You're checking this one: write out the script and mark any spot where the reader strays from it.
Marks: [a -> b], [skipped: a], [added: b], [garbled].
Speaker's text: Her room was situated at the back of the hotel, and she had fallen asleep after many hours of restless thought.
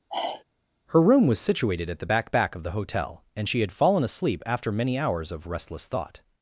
Her room was situated at the back [added: back] of the hotel, and she had fallen asleep after many hours of restless thought.